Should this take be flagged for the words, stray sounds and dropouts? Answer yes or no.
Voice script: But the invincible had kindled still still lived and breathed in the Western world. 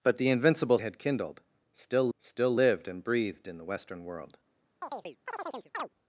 yes